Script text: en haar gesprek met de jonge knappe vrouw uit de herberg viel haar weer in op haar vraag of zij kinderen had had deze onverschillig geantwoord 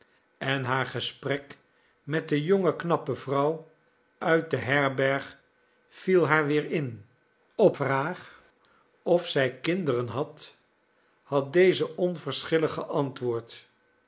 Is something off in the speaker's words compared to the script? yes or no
yes